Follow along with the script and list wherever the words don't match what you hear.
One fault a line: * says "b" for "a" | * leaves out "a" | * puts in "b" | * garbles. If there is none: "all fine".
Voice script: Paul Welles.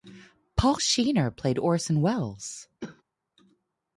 * puts in "Shenar played Orson"